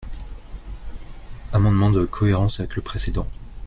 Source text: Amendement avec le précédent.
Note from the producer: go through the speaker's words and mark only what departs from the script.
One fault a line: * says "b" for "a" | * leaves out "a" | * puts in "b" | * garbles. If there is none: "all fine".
* puts in "de cohérence"